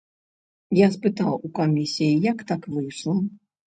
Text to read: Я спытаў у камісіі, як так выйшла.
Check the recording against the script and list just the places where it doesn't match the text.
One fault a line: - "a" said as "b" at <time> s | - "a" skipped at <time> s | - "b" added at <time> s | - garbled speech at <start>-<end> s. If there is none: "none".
none